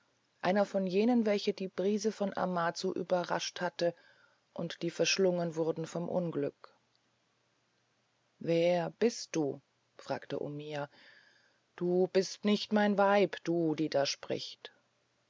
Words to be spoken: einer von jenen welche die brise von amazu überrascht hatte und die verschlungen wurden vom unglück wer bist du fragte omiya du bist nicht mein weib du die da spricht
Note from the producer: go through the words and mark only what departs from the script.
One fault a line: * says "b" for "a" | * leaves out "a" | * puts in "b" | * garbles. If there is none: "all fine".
all fine